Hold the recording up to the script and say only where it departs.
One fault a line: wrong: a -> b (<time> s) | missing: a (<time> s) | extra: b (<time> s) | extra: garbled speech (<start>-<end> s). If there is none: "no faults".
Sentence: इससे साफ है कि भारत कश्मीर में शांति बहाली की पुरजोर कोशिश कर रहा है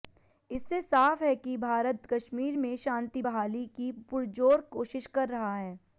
no faults